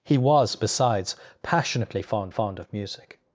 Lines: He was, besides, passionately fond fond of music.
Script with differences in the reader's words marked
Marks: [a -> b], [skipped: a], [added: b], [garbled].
He was, besides, passionately fond fond of music.